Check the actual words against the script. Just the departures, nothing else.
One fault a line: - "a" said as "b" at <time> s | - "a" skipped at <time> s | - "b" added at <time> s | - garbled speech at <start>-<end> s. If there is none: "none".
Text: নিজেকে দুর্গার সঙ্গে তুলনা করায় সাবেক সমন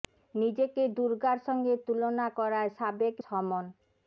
none